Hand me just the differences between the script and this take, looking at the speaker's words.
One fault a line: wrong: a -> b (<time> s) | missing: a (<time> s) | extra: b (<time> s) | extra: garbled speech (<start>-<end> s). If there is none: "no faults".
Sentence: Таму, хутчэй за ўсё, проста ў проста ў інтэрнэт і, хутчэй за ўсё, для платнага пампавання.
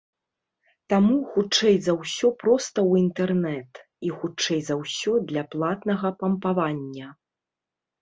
missing: проста ў (3.0 s)